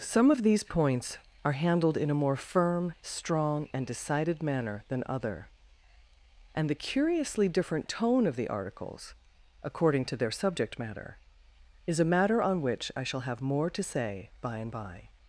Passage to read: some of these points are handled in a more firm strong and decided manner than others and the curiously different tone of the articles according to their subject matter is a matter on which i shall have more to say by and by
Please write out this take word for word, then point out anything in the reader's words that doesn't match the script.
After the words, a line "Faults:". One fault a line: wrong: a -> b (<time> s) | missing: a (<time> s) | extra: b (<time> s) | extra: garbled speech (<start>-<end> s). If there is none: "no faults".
some of these points are handled in a more firm strong and decided manner than other and the curiously different tone of the articles according to their subject matter is a matter on which i shall have more to say by and by
Faults:
wrong: others -> other (5.1 s)